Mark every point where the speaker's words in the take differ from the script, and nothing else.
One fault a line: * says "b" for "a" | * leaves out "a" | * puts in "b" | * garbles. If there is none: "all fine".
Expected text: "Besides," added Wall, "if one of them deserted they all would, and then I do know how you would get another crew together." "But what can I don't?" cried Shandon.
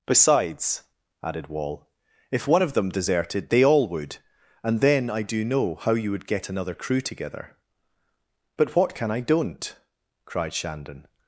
all fine